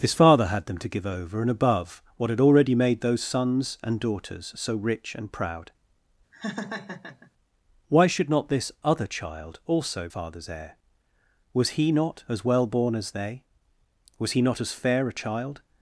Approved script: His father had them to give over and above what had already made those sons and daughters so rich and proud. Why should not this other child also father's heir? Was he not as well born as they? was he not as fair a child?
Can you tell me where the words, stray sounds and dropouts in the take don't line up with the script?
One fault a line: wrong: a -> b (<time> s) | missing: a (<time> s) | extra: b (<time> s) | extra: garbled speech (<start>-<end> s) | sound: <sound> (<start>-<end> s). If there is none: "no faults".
sound: laugh (6.3-7.3 s)